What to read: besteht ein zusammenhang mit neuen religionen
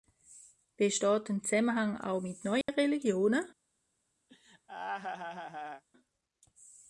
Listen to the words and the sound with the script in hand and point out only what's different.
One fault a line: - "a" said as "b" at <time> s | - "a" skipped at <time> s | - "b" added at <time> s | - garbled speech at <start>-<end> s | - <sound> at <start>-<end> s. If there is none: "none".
- "auch" added at 2.0 s
- dropout at 2.6-2.7 s
- laugh at 4.3-5.8 s